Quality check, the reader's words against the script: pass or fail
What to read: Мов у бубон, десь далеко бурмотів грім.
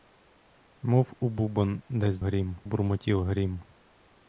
fail